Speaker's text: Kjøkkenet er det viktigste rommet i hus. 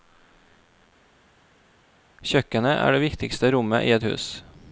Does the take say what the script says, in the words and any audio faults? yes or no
no